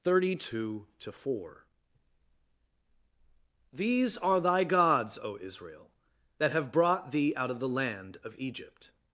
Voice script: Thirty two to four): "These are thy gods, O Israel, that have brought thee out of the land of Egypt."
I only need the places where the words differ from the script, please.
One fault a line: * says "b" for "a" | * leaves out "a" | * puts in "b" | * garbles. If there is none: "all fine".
all fine